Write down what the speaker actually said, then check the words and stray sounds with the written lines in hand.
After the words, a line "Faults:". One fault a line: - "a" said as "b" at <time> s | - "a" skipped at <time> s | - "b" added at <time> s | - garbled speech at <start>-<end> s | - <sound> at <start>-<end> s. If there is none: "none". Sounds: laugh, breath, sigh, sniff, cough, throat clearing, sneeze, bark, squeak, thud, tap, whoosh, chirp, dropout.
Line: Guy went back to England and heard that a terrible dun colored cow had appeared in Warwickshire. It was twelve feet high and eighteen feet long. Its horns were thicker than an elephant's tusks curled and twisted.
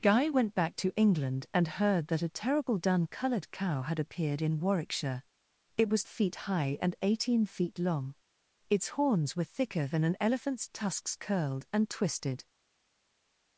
Guy went back to England and heard that a terrible dun colored cow had appeared in Warwickshire. It was feet high and eighteen feet long. Its horns were thicker than an elephant's tusks curled and twisted.
Faults:
- "twelve" skipped at 6.0 s